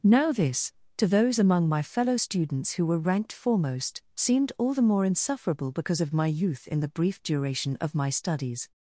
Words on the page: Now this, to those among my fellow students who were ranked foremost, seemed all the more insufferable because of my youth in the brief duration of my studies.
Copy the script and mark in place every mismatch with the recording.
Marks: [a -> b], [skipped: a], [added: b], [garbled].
Now this, to those among my fellow students who were ranked foremost, seemed all the more insufferable because of my youth in the brief duration of my studies.